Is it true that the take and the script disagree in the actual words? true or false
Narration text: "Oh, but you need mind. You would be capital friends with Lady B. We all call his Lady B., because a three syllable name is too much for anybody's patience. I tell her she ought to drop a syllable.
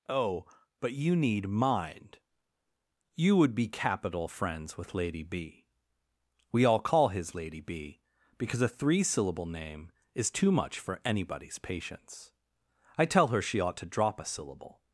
false